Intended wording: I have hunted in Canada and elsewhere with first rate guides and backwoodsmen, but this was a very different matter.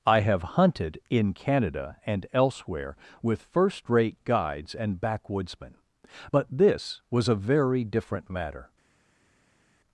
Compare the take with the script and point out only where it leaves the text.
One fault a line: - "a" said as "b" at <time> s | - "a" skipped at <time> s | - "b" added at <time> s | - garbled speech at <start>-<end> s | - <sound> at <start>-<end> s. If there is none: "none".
none